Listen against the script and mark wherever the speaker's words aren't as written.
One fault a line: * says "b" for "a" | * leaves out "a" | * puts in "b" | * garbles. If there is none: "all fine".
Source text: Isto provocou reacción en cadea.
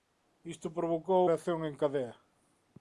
all fine